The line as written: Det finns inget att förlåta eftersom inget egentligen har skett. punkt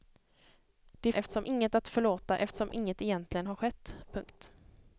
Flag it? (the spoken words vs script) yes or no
yes